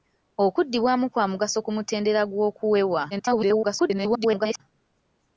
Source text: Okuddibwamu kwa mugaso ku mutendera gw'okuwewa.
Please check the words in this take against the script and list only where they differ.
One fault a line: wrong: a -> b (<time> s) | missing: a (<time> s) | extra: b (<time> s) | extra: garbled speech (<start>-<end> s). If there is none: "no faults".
extra: garbled speech (3.1-4.6 s)